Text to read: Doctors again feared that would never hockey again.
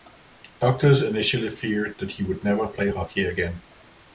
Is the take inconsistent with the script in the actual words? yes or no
yes